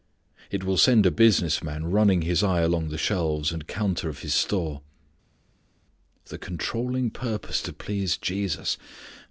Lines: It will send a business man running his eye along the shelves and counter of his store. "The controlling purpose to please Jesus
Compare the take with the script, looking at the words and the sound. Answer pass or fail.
pass